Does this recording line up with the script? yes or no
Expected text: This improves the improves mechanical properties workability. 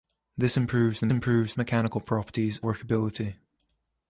yes